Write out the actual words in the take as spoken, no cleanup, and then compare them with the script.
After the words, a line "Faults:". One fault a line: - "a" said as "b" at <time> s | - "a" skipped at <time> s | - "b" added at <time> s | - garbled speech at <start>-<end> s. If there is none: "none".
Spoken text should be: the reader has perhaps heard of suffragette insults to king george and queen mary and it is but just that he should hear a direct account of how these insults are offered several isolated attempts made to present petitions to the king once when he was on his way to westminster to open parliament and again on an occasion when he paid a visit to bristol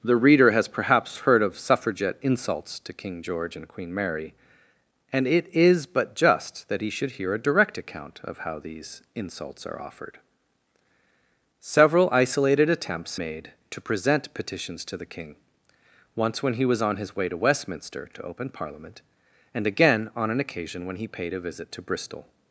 the reader has perhaps heard of suffragette insults to king george and queen mary and it is but just that he should hear a direct account of how these insults are offered several isolated attempts made to present petitions to the king once when he was on his way to westminster to open parliament and again on an occasion when he paid a visit to bristol
Faults:
none